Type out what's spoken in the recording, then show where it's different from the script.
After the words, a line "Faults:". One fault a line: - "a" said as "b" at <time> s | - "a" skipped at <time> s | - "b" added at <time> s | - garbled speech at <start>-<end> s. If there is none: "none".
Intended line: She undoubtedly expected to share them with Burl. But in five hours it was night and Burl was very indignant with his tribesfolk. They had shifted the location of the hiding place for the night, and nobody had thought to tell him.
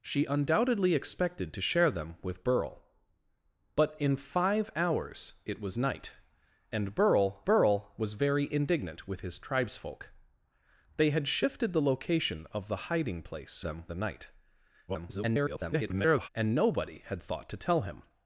She undoubtedly expected to share them with Burl. But in five hours it was night and Burl Burl was very indignant with his tribesfolk. They had shifted the location of the hiding place them the night, [garbled] and nobody had thought to tell him.
Faults:
- "Burl" added at 7.4 s
- "for" said as "them" at 13.6 s
- garbled speech at 14.9-16.3 s